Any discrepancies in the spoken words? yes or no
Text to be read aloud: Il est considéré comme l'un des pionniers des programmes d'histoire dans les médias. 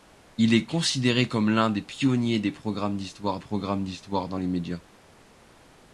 yes